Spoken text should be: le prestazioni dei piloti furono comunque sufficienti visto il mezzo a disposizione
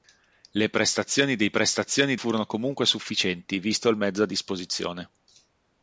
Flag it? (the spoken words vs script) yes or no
yes